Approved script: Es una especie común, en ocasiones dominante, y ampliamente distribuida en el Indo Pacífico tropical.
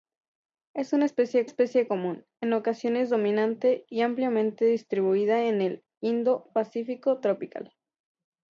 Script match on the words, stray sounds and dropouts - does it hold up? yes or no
no